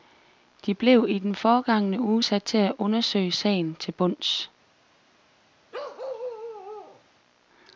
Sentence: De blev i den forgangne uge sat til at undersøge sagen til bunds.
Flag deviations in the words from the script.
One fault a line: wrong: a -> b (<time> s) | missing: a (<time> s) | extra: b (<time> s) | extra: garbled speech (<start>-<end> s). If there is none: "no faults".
no faults